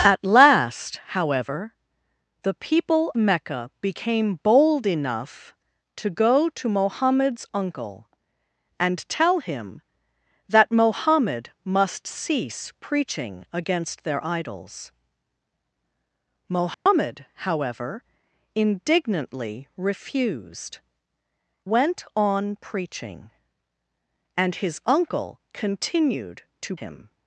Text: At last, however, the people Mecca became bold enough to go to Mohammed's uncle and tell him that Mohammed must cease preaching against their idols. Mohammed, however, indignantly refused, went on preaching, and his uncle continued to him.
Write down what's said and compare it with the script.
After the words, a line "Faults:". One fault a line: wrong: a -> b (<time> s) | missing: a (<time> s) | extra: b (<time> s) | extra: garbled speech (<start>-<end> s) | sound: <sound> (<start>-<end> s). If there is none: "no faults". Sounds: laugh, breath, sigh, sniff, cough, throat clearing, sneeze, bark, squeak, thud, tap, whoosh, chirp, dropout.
At last, however, the people Mecca became bold enough to go to Mohammed's uncle and tell him that Mohammed must cease preaching against their idols. Mohammed, however, indignantly refused, went on preaching, and his uncle continued to him.
Faults:
sound: dropout (16.7-16.9 s)